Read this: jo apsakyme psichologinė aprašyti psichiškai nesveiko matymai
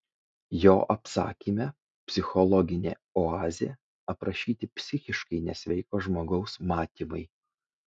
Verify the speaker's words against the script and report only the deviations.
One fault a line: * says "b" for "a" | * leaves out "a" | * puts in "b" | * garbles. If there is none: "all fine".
* puts in "oazė"
* puts in "žmogaus"